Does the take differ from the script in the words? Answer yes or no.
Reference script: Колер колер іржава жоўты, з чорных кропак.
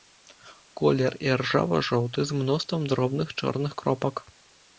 yes